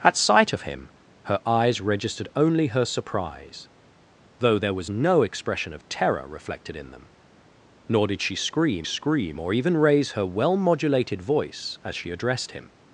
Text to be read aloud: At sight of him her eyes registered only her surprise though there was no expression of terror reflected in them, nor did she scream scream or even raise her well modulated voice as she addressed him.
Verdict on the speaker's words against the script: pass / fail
pass